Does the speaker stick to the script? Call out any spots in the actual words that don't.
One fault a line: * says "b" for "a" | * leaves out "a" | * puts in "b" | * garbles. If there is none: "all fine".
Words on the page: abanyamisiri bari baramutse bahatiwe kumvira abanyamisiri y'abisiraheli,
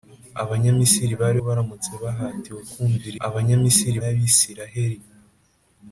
all fine